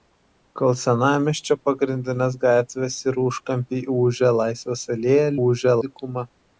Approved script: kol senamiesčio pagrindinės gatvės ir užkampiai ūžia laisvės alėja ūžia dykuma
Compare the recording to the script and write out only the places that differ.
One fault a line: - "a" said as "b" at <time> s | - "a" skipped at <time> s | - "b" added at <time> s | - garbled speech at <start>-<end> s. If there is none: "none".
none